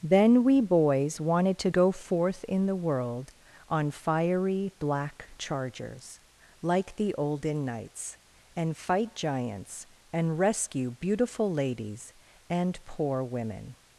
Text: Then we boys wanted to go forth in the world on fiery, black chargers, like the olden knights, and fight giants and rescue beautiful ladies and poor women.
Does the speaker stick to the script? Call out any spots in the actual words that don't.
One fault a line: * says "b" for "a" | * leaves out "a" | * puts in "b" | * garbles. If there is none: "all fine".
all fine